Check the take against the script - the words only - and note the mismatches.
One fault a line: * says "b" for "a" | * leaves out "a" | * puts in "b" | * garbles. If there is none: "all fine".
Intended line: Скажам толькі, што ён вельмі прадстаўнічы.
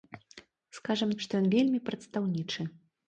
* leaves out "толькі"